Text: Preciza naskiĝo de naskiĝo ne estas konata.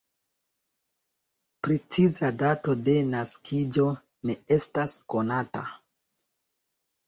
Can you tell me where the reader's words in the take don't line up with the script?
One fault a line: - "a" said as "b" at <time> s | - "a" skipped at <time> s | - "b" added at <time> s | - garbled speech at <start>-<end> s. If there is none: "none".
- "naskiĝo" said as "dato" at 2.5 s